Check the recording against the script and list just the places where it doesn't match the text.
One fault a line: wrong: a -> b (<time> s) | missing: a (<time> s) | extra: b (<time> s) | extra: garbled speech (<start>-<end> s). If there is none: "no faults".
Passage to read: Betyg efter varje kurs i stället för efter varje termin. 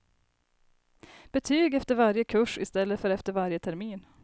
no faults